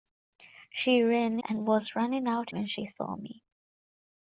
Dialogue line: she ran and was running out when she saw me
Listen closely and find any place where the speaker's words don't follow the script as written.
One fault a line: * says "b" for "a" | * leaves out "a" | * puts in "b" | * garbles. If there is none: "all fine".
all fine